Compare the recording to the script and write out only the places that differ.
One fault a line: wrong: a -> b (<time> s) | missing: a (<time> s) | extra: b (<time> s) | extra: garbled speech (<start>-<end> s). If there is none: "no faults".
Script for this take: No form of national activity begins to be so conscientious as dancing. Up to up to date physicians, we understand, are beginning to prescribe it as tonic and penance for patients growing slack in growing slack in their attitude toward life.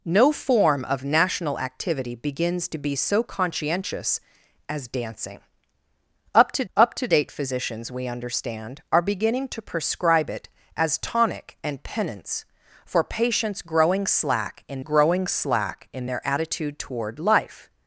no faults